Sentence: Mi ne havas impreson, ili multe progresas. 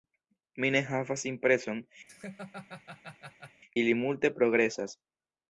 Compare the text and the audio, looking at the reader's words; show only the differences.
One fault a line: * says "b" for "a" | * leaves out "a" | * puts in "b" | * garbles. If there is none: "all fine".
all fine